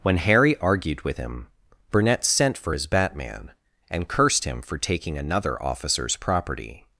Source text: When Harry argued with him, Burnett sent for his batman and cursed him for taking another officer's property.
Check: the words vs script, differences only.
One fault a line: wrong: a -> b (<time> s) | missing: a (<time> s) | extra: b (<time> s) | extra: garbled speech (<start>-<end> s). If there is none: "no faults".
no faults